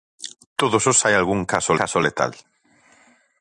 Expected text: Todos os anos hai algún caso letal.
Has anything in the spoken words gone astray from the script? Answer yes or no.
yes